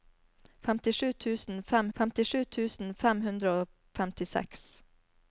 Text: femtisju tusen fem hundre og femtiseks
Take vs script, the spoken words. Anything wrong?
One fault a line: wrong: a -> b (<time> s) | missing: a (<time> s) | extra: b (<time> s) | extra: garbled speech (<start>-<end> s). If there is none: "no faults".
extra: femtisju tusen fem (2.0 s)